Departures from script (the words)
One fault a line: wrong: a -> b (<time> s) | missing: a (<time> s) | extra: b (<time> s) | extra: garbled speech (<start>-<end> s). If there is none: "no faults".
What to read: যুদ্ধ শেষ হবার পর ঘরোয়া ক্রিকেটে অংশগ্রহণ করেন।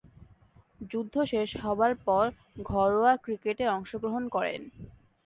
no faults